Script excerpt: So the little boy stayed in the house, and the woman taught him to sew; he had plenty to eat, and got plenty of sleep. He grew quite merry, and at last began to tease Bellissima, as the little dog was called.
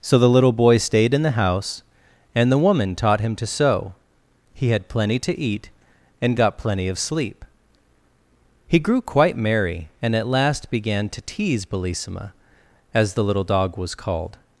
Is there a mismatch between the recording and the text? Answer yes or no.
no